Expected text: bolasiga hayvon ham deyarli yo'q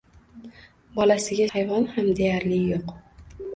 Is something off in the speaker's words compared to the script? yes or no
no